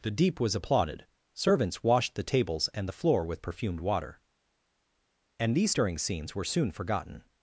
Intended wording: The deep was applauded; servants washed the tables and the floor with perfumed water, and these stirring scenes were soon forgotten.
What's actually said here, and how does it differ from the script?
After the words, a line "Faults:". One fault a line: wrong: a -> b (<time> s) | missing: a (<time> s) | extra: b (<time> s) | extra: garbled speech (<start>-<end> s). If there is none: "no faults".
The deep was applauded; servants washed the tables and the floor with perfumed water, and these stirring scenes were soon forgotten.
Faults:
no faults